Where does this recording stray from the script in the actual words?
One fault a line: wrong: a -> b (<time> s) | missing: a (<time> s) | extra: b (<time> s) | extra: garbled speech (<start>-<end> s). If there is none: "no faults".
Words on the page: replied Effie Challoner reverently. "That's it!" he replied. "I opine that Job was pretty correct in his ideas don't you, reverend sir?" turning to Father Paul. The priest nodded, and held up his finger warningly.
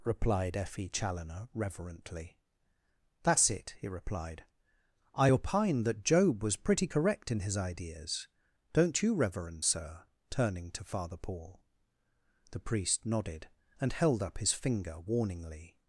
no faults